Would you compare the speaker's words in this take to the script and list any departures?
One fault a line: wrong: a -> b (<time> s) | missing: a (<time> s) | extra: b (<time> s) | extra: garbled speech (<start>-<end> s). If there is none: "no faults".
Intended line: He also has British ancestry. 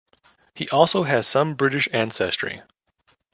extra: some (1.3 s)